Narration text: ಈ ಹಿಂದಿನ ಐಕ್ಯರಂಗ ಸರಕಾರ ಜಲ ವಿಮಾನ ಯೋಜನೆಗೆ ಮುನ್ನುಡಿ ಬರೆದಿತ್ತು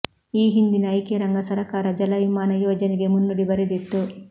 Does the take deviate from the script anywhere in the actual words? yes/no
no